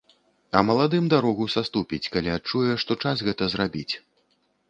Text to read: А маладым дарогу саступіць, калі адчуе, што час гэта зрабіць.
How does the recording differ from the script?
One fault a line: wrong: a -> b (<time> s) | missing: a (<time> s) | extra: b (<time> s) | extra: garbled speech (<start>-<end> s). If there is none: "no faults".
no faults